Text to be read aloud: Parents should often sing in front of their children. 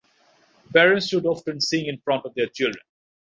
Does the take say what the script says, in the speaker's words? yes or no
yes